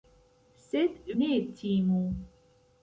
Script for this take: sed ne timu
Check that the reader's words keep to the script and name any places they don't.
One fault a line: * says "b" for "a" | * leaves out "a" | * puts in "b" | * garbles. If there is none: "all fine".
all fine